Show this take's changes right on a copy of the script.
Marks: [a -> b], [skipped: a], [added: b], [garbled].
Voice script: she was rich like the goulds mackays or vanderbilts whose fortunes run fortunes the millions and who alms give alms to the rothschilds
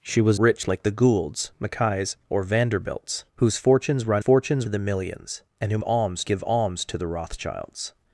she was rich like the goulds mackays or vanderbilts whose fortunes run fortunes the millions and who alms give alms to the rothschilds